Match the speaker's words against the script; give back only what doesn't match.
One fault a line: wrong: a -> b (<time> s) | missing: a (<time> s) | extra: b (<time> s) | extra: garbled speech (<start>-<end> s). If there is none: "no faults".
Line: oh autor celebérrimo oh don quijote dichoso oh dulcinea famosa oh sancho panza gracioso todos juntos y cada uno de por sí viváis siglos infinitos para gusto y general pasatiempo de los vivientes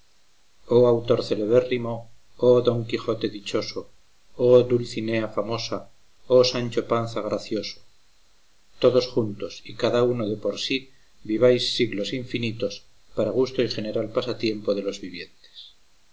no faults